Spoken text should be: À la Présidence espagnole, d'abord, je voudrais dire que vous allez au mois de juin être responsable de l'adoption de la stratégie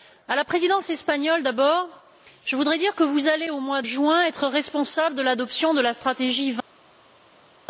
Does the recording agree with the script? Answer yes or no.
no